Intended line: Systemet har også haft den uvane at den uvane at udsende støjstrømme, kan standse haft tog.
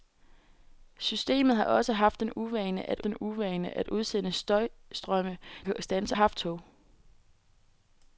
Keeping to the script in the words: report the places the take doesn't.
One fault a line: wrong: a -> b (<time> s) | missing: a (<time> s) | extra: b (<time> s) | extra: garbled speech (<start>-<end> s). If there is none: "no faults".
no faults